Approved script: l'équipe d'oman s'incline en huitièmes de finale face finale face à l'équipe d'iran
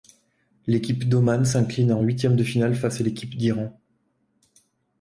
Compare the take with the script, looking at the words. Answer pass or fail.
fail